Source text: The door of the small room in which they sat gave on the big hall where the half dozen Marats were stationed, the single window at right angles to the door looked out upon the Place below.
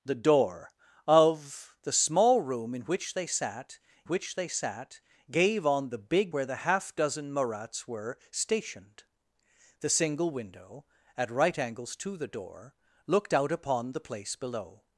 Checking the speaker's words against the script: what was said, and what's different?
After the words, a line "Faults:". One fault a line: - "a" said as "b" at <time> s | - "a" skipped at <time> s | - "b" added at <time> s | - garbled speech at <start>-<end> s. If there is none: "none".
The door of the small room in which they sat which they sat gave on the big where the half dozen Marats were stationed, the single window at right angles to the door looked out upon the Place below.
Faults:
- "which they sat" added at 4.0 s
- "hall" skipped at 6.3 s